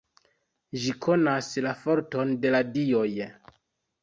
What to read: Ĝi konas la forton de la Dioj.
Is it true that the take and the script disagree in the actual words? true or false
false